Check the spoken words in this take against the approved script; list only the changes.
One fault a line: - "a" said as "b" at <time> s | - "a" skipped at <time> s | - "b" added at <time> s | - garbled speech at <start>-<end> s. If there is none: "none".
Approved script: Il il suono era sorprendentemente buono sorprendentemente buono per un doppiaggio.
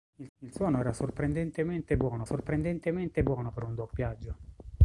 none